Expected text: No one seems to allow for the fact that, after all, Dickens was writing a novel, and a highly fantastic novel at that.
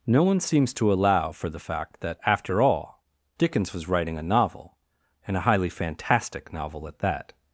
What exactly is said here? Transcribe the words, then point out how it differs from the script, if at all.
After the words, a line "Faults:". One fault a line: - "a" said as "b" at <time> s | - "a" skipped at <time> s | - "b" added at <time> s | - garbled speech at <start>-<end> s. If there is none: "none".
No one seems to allow for the fact that, after all, Dickens was writing a novel, and a highly fantastic novel at that.
Faults:
none